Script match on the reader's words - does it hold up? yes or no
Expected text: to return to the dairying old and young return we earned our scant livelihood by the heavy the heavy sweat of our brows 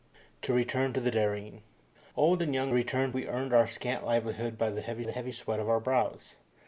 yes